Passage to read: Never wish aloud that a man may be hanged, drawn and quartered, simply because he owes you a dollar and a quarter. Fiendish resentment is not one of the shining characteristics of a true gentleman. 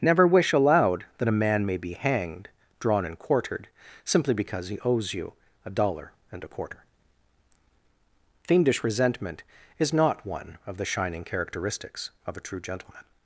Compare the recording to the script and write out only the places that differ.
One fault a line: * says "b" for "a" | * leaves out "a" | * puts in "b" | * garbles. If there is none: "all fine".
all fine